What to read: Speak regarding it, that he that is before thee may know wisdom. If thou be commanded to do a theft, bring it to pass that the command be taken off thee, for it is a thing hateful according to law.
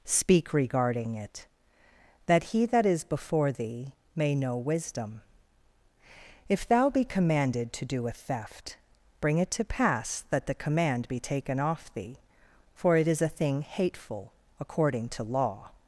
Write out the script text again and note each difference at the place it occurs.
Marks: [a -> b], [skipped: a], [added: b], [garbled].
Speak regarding it, that he that is before thee may know wisdom. If thou be commanded to do a theft, bring it to pass that the command be taken off thee, for it is a thing hateful according to law.